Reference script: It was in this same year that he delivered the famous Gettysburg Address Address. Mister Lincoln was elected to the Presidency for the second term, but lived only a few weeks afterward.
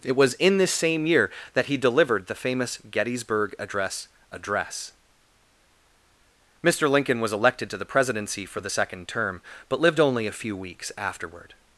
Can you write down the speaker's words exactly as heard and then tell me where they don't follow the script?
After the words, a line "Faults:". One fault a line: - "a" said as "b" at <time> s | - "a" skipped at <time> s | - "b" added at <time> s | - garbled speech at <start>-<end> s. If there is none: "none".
It was in this same year that he delivered the famous Gettysburg Address Address. Mister Lincoln was elected to the Presidency for the second term, but lived only a few weeks afterward.
Faults:
none